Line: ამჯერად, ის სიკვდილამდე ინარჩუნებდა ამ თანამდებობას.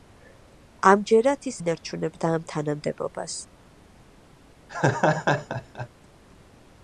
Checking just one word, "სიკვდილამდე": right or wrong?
wrong